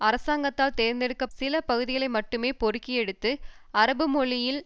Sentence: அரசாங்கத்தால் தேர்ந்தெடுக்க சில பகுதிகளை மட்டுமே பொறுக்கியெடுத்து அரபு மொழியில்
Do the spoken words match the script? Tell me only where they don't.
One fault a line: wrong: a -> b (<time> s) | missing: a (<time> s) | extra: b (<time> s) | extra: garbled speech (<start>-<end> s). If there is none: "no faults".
no faults